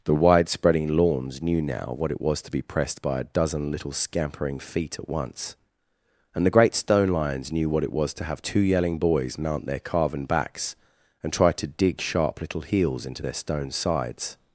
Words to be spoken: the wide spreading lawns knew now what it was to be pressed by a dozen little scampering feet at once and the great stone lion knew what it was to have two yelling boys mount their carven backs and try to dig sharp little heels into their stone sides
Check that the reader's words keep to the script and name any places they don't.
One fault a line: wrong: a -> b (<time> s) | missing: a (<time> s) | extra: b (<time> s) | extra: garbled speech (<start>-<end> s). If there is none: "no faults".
wrong: lion -> lions (7.1 s)